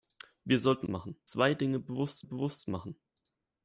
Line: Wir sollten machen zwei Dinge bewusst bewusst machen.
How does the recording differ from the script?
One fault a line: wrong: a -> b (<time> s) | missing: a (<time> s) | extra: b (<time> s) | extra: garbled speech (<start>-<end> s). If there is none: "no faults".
no faults